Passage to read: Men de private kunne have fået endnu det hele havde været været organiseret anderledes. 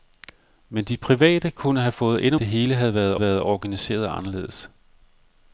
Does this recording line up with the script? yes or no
yes